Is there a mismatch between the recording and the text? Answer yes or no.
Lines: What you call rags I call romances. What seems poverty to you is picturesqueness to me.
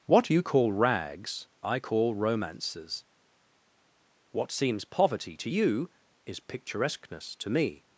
no